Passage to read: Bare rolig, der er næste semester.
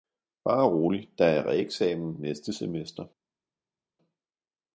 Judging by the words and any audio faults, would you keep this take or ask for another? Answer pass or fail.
fail